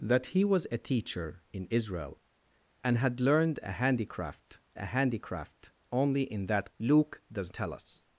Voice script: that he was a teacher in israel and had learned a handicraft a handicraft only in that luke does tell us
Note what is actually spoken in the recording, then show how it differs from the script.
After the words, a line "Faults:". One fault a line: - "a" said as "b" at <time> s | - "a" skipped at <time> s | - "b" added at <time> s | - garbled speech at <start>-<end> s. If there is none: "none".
that he was a teacher in israel and had learned a handicraft a handicraft only in that luke does tell us
Faults:
none